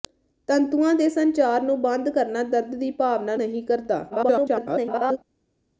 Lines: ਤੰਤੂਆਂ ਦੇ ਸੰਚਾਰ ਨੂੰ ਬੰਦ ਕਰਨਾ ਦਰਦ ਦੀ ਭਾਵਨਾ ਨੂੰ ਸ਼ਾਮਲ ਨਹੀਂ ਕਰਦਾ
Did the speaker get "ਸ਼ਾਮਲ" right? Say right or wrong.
wrong